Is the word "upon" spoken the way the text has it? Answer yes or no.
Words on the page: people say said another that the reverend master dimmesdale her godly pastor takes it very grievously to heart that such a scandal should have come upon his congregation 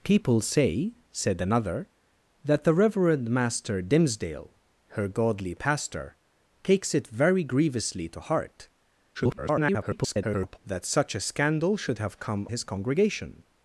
no